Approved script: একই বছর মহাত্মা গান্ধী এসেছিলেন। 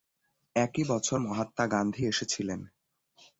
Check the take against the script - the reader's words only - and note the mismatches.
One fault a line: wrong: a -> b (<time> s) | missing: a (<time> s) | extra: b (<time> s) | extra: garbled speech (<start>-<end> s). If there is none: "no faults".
no faults